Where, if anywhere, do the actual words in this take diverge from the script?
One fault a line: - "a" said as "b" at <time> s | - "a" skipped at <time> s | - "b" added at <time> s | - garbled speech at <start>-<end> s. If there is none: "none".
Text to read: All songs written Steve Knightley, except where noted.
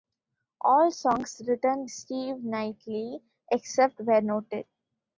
none